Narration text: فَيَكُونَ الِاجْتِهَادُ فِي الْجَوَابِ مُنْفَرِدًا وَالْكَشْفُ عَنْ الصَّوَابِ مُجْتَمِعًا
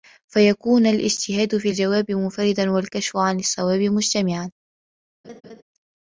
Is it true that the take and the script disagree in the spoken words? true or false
false